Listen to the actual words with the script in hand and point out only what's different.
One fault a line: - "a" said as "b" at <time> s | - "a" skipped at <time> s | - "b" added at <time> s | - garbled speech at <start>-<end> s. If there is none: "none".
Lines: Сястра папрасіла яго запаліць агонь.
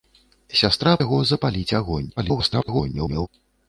- "папрасіла" skipped at 0.9 s
- garbled speech at 2.2-3.3 s